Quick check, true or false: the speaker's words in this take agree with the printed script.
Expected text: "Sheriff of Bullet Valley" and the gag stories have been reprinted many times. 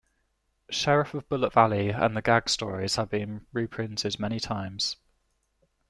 true